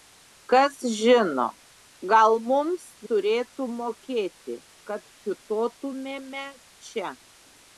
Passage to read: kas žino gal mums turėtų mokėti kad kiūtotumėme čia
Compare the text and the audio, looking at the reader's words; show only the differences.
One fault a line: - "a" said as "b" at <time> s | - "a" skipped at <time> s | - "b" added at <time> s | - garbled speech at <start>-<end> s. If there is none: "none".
none